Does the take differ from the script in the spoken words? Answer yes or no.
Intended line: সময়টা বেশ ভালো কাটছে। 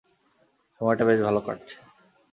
no